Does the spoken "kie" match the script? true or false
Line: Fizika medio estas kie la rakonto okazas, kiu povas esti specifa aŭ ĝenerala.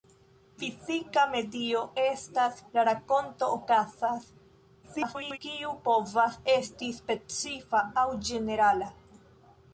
false